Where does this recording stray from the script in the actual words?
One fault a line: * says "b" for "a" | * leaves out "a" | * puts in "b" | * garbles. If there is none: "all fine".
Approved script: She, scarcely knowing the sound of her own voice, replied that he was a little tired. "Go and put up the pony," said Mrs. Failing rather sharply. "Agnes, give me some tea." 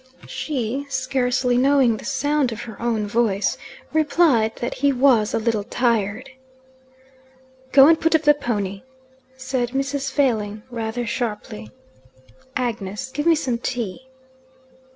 all fine